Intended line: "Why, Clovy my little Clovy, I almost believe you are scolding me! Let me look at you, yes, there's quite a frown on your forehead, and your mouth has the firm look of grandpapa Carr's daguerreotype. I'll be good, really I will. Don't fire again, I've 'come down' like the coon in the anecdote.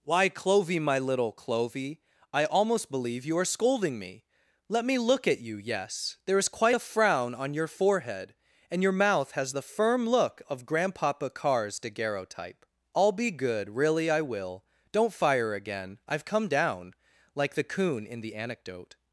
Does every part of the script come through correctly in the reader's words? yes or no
yes